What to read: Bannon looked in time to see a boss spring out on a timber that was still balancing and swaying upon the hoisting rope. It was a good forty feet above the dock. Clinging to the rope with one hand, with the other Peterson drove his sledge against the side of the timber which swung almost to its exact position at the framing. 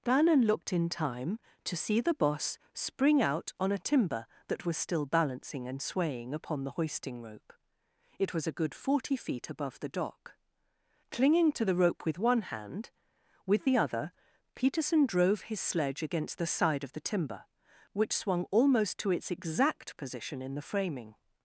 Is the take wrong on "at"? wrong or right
wrong